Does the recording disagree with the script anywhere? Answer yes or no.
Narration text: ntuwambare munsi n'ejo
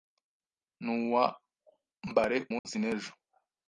no